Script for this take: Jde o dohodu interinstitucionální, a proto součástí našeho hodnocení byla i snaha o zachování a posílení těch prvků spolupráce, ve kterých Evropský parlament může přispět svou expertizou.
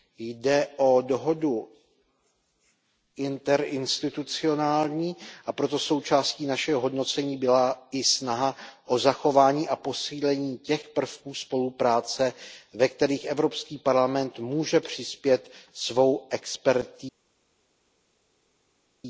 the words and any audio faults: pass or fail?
pass